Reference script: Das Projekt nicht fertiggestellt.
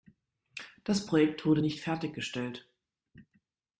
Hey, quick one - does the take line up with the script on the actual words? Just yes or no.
no